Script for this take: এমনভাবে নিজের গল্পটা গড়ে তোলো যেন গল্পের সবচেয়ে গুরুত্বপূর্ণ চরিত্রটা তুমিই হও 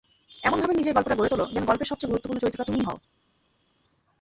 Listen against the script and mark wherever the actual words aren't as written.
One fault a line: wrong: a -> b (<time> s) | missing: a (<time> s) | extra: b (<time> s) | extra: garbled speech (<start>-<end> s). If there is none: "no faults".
no faults